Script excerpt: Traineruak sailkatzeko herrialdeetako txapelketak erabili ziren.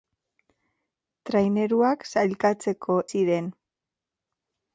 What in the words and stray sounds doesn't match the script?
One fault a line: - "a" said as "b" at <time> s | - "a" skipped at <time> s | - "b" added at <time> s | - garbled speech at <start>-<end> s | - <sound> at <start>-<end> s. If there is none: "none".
- "herrialdeetako txapelketak erabili" skipped at 3.0 s